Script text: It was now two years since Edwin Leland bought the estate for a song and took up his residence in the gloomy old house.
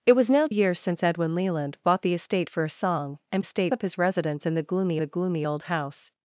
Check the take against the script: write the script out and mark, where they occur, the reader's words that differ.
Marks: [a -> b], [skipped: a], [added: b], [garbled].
It was now [skipped: two] years since Edwin Leland bought the estate for a song and [took -> estate] up his residence in the gloomy [added: the gloomy] old house.